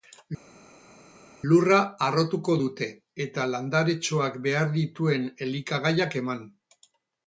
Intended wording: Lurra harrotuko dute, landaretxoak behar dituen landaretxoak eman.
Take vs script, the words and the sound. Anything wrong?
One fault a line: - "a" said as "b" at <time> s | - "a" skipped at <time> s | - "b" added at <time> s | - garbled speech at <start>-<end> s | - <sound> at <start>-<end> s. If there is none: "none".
- "eta" added at 3.3 s
- "landaretxoak" said as "elikagaiak" at 5.5 s